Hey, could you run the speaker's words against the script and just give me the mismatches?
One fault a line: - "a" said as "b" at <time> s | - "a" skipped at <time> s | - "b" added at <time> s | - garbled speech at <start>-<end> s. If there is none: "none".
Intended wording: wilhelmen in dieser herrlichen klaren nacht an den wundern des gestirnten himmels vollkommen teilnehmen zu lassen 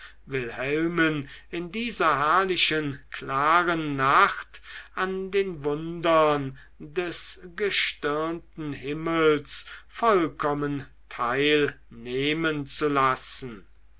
none